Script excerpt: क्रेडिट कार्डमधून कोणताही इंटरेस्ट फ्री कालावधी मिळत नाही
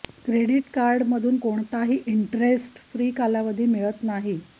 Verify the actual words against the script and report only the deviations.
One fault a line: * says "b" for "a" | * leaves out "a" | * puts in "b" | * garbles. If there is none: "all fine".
all fine